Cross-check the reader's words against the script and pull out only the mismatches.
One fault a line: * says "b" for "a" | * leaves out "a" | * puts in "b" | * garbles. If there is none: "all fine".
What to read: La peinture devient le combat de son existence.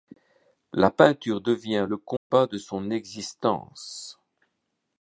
all fine